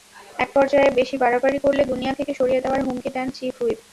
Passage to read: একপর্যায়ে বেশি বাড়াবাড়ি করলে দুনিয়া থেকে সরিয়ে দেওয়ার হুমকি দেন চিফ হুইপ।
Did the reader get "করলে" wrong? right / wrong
right